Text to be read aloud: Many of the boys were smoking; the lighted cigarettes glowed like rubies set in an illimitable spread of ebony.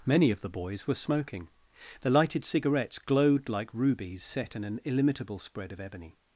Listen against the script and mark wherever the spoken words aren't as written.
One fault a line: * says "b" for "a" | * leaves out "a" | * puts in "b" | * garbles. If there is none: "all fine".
all fine